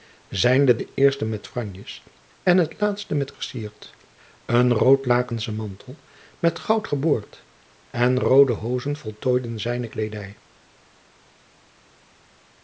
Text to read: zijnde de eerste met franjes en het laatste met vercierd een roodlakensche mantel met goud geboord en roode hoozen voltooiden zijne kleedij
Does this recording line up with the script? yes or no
yes